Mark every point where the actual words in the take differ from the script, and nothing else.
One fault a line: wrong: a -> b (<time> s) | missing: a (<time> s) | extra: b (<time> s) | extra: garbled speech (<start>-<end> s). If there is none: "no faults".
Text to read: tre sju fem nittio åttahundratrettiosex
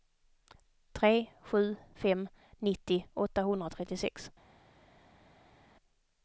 no faults